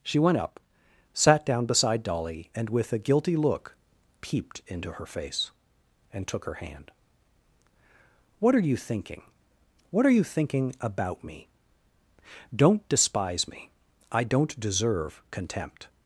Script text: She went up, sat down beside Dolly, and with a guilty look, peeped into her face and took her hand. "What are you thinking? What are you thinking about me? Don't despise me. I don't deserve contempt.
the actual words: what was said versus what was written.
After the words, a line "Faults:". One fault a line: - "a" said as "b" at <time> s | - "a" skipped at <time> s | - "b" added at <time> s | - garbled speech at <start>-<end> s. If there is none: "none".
She went up, sat down beside Dolly, and with a guilty look, peeped into her face and took her hand. "What are you thinking? What are you thinking about me? Don't despise me. I don't deserve contempt.
Faults:
none